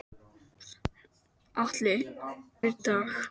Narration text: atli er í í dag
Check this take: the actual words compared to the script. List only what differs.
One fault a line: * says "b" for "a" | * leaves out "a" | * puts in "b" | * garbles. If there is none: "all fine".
all fine